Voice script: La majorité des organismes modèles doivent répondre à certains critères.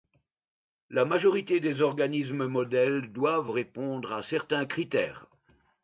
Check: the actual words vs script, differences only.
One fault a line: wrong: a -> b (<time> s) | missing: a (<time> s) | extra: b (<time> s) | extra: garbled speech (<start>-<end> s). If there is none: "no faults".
no faults